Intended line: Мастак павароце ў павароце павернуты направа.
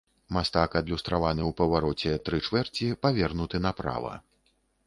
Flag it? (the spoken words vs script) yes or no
yes